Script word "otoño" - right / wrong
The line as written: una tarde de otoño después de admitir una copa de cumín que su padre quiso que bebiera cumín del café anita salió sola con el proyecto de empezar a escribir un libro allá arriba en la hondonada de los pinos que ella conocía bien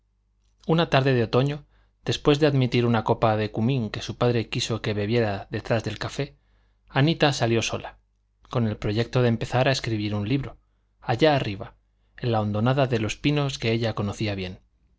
right